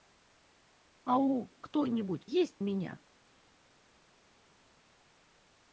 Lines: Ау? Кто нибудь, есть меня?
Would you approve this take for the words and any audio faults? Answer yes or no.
yes